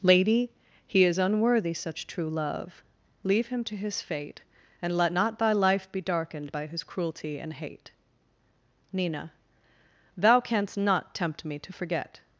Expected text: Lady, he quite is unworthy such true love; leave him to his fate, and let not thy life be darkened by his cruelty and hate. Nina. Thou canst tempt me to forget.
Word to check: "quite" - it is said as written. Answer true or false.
false